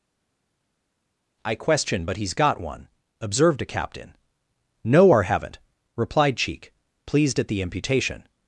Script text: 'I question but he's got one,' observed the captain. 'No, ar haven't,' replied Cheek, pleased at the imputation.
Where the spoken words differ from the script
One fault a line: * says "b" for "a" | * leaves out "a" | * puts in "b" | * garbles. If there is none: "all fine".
* says "a" for "the"